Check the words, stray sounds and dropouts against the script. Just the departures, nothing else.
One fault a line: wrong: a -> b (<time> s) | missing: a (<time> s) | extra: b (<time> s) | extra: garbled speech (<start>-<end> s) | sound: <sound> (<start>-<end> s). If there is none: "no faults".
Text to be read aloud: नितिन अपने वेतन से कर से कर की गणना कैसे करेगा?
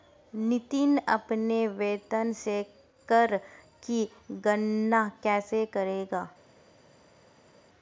missing: से कर (3.4 s)